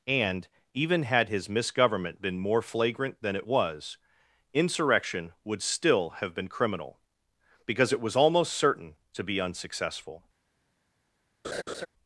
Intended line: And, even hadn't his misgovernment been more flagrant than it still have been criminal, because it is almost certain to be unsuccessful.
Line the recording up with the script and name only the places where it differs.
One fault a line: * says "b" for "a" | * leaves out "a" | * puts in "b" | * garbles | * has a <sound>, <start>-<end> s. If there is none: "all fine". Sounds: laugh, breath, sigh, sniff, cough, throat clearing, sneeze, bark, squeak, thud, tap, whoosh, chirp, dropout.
* says "had" for "hadn't"
* puts in "was insurrection would"
* says "was" for "is"
* has a laugh, 11.4-11.9 s